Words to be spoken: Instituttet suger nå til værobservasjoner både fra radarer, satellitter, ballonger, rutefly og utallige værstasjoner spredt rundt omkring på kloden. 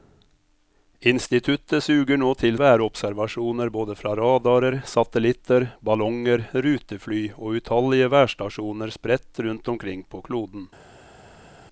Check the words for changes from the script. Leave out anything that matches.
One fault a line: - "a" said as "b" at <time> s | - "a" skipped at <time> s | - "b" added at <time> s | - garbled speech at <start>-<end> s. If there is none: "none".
none